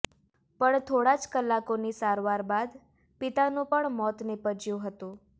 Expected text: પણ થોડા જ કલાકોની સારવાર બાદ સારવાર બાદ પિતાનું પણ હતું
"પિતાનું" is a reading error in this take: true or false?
true